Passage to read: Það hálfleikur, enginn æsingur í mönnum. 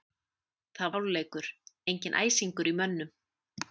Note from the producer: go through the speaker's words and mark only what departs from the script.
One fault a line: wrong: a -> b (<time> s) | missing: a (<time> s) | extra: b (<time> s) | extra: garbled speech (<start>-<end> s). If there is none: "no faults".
no faults